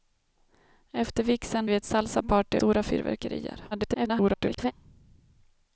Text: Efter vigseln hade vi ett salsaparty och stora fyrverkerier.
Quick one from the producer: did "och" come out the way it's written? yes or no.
no